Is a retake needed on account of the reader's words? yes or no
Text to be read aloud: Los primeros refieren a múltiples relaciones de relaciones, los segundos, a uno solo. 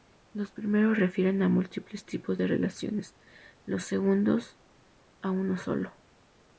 yes